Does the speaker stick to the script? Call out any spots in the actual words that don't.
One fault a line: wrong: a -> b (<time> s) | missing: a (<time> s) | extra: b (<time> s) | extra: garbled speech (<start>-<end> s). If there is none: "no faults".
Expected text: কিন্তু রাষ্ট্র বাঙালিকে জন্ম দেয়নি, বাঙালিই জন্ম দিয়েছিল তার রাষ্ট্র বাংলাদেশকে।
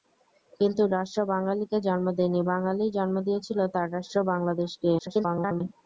extra: garbled speech (5.0-5.6 s)